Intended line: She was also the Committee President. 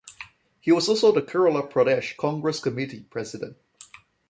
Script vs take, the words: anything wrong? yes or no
yes